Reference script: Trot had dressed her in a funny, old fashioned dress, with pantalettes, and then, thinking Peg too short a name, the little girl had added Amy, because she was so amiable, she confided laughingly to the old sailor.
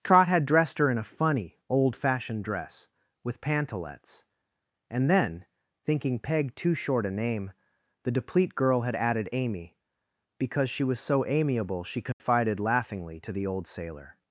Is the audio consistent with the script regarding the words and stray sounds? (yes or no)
no